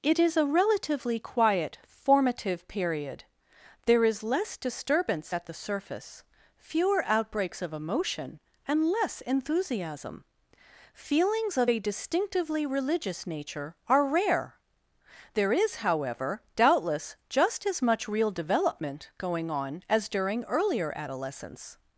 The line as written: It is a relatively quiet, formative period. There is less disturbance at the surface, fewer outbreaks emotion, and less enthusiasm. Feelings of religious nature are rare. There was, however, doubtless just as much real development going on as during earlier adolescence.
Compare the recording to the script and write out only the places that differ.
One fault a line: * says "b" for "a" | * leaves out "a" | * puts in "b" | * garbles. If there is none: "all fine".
* puts in "of"
* puts in "a distinctively"
* says "is" for "was"